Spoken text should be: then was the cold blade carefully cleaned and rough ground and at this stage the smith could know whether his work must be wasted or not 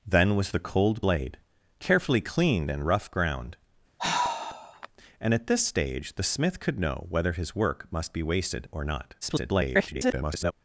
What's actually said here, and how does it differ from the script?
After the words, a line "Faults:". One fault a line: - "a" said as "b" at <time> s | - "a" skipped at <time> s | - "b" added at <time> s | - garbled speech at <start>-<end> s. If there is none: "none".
then was the cold blade carefully cleaned and rough ground and at this stage the smith could know whether his work must be wasted or not [garbled]
Faults:
- garbled speech at 9.2-10.5 s